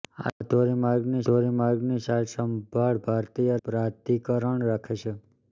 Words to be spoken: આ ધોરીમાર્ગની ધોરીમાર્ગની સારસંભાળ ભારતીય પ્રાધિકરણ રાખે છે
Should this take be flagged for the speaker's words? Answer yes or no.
no